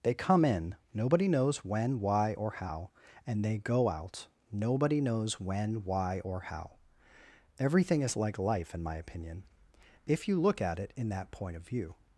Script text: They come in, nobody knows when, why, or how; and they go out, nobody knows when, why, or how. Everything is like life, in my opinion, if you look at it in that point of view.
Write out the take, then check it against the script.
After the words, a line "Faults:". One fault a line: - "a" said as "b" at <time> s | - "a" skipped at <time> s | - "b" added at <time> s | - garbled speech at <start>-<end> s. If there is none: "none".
They come in, nobody knows when, why, or how; and they go out, nobody knows when, why, or how. Everything is like life, in my opinion, if you look at it in that point of view.
Faults:
none